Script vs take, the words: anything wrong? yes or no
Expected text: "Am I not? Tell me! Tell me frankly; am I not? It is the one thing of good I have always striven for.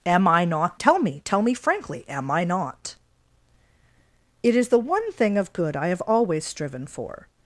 no